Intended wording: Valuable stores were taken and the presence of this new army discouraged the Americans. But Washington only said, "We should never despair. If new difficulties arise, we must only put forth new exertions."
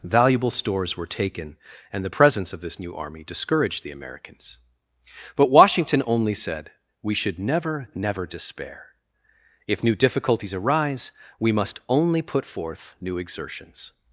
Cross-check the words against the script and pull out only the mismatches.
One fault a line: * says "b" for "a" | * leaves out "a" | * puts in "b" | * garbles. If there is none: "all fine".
* puts in "never"